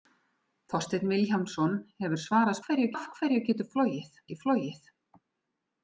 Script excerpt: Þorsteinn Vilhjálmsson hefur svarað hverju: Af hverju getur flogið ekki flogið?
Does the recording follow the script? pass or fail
pass